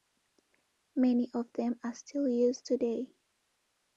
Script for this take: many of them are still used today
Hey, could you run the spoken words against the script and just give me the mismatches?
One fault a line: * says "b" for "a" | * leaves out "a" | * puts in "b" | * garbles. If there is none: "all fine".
all fine